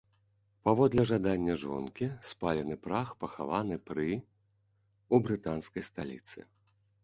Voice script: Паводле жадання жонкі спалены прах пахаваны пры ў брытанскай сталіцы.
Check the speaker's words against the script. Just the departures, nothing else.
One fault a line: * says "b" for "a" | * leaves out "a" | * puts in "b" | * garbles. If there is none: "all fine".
all fine